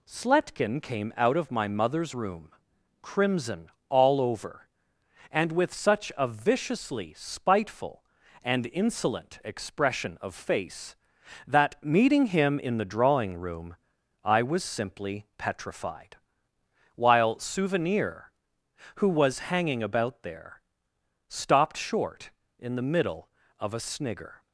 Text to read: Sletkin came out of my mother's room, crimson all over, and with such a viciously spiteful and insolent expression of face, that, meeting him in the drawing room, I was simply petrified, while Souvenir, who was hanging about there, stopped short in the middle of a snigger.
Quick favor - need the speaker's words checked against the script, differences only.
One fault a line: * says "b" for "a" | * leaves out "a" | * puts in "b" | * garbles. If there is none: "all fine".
all fine